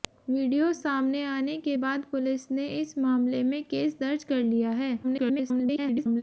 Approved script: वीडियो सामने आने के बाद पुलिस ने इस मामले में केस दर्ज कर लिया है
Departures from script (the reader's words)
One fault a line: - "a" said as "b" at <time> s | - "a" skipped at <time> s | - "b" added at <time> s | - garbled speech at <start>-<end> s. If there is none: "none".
- garbled speech at 5.0-6.2 s